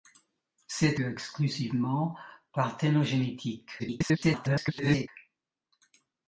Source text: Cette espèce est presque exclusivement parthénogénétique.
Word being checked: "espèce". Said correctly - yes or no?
no